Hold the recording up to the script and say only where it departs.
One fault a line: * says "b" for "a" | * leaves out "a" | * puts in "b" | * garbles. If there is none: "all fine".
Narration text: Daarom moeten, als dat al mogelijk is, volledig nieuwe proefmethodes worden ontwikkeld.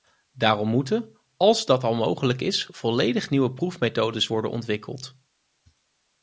all fine